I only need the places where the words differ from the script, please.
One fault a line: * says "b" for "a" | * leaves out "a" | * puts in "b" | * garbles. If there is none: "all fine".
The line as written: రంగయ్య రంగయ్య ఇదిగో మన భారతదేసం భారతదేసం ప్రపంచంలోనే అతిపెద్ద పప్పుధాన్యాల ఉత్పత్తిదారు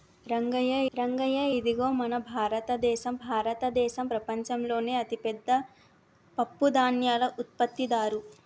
all fine